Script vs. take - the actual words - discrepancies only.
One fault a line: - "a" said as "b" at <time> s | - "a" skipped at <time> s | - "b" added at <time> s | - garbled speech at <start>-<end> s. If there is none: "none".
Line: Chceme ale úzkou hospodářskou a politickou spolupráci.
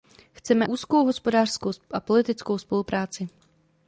- "ale" skipped at 0.7 s